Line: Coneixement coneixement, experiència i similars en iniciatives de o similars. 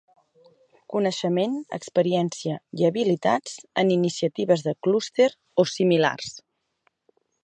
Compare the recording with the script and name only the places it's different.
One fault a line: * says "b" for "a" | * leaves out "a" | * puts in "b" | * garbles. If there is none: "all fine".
* leaves out "coneixement"
* says "habilitats" for "similars"
* puts in "clúster"